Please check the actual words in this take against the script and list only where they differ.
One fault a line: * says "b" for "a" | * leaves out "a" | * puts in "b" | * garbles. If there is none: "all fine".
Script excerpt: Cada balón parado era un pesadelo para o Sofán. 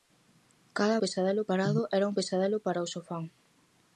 * says "pesadelo" for "balón"